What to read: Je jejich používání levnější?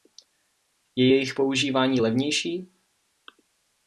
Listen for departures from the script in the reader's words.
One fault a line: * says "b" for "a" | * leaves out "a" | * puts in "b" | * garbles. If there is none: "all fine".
all fine